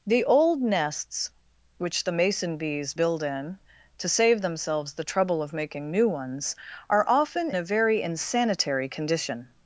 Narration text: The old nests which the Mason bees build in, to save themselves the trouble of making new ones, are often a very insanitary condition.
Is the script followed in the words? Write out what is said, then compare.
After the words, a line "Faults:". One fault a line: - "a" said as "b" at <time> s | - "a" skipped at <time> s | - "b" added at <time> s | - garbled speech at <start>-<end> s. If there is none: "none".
The old nests which the Mason bees build in, to save themselves the trouble of making new ones, are often a very insanitary condition.
Faults:
none